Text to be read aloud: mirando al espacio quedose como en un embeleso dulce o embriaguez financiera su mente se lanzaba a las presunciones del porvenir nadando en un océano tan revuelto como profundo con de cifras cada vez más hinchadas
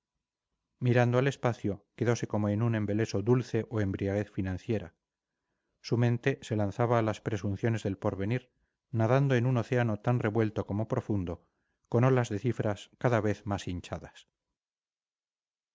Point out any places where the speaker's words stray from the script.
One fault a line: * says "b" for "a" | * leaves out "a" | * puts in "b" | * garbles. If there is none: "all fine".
* puts in "olas"